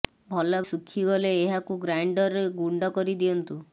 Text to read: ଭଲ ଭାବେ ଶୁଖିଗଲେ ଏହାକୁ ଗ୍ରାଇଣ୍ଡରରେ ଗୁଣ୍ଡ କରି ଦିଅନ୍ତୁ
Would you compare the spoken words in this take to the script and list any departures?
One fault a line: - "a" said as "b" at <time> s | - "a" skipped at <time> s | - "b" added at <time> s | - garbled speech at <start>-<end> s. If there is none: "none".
- "ଭାବେ" skipped at 0.6 s